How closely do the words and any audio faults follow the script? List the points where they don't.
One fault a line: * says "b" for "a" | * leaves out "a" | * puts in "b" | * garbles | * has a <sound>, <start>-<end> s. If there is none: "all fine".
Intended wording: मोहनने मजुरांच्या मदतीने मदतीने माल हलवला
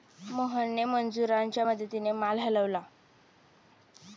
* leaves out "मदतीने"